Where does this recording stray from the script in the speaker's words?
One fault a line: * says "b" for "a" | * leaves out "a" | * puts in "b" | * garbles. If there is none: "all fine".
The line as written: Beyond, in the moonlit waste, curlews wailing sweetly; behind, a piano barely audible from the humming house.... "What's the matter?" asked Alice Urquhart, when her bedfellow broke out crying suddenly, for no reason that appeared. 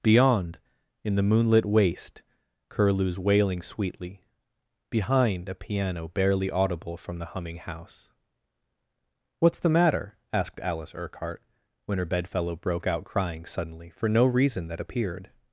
all fine